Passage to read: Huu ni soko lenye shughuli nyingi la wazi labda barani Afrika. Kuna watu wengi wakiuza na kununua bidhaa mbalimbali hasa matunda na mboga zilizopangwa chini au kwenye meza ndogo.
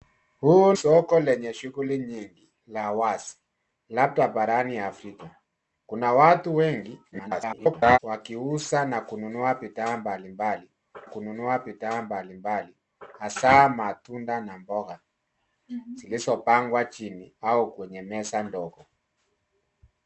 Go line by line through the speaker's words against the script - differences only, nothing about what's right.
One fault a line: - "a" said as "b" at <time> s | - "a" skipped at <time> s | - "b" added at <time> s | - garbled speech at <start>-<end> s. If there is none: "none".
- "ni" skipped at 0.7 s
- garbled speech at 7.1-8.0 s
- "kununua bidhaa mbalimbali" added at 11.0 s